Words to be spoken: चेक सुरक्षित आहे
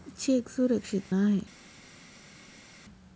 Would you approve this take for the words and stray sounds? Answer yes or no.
yes